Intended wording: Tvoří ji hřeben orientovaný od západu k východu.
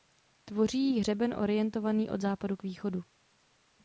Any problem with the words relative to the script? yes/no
no